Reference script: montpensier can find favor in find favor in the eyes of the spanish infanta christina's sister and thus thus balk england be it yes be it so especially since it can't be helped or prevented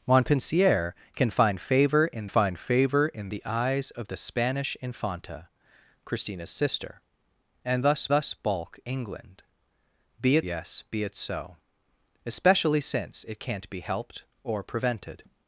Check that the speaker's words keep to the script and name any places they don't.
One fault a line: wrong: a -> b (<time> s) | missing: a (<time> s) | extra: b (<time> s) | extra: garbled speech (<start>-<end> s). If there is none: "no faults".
no faults